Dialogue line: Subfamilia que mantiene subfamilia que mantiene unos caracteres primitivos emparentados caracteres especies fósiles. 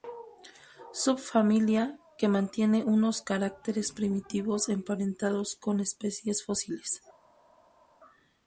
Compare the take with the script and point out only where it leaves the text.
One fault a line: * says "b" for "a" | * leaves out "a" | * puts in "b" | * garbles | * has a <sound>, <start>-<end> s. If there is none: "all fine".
* leaves out "subfamilia que mantiene"
* says "con" for "caracteres"